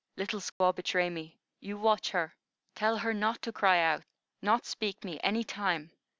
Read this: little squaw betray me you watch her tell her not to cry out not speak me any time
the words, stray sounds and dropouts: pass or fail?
fail